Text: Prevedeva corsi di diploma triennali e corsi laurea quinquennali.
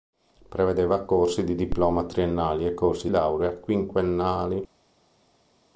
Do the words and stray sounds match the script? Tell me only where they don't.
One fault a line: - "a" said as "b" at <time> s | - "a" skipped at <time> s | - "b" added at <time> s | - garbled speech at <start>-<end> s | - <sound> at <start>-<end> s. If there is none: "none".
none